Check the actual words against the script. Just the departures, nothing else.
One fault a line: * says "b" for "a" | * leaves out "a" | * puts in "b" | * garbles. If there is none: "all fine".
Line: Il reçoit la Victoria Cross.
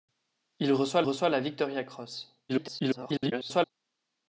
* puts in "reçoit"
* garbles